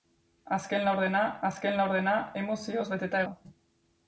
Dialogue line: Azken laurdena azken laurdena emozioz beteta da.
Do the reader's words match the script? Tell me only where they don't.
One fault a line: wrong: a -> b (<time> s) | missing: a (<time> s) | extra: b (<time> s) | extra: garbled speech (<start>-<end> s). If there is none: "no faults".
no faults